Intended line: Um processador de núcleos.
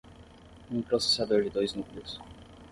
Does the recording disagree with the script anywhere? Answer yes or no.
yes